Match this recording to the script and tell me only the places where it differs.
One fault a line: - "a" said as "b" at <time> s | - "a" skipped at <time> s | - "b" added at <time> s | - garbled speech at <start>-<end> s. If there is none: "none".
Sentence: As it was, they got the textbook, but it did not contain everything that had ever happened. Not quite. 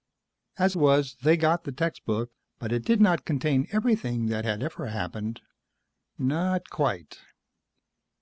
- "it" skipped at 0.8 s